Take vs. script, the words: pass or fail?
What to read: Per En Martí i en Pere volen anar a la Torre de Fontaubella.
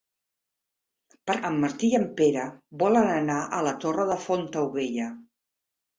pass